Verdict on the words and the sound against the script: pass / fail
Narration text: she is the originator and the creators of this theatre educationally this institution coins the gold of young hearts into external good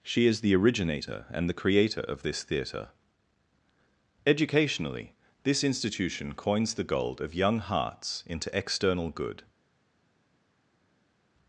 fail